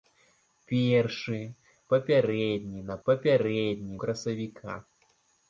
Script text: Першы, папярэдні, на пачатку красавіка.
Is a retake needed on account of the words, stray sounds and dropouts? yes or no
yes